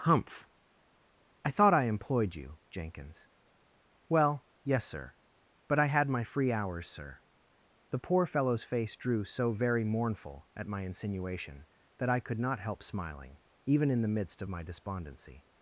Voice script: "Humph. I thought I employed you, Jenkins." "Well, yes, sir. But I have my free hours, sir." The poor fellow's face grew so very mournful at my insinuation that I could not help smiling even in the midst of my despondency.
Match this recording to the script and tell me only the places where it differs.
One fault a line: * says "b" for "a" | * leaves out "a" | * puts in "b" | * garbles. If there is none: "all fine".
* says "had" for "have"
* says "drew" for "grew"